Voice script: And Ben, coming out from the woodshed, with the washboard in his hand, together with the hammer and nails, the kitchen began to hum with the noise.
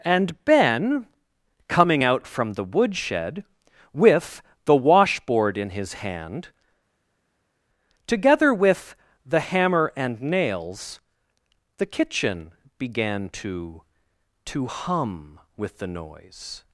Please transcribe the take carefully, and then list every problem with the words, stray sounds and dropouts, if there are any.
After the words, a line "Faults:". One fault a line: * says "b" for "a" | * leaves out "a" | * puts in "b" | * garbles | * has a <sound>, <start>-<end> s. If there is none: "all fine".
And Ben, coming out from the woodshed, with the washboard in his hand, together with the hammer and nails, the kitchen began to to hum with the noise.
Faults:
* puts in "to"